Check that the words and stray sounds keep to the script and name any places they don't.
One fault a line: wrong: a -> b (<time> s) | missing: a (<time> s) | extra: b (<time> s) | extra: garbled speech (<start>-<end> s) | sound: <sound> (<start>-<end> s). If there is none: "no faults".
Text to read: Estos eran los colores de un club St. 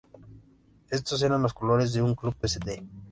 no faults